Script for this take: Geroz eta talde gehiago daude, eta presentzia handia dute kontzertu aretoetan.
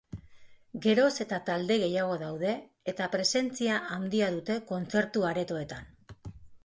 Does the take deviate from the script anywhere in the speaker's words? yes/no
no